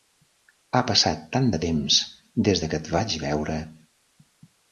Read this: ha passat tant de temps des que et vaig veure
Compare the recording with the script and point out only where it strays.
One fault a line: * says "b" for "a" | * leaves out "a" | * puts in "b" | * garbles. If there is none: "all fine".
all fine